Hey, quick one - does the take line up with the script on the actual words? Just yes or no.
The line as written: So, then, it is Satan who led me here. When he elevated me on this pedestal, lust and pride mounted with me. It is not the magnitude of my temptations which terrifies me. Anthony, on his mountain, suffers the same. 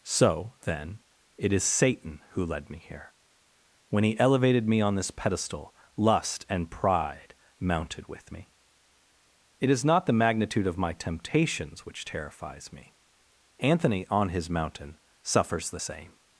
yes